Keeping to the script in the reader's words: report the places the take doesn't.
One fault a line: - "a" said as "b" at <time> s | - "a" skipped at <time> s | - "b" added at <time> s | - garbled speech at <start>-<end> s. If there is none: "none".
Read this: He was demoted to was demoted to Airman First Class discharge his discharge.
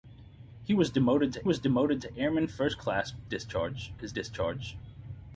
none